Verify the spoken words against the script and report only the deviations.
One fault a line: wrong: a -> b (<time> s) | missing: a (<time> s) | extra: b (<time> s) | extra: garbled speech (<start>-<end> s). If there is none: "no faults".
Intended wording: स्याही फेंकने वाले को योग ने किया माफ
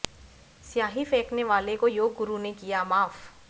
extra: गुरु (2.1 s)